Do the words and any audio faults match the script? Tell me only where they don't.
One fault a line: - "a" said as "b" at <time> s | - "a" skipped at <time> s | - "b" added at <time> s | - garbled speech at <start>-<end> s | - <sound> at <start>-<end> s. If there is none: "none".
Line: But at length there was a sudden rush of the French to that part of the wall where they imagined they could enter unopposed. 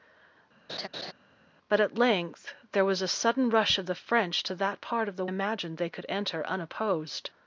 - laugh at 0.7-1.1 s
- "wall where they" skipped at 5.3 s